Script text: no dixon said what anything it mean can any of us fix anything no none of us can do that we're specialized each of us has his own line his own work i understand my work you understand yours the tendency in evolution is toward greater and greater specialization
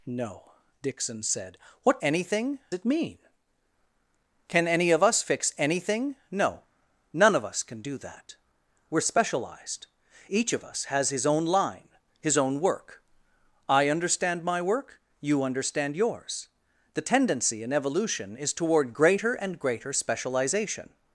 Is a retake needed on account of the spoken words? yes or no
no